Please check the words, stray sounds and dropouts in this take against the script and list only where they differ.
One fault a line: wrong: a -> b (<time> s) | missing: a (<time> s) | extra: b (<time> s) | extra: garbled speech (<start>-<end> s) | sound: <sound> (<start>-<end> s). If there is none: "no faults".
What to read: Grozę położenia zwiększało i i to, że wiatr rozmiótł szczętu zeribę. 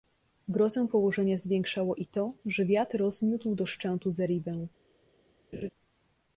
missing: i (2.1 s)
extra: do (3.5 s)
sound: laugh (5.5-5.7 s)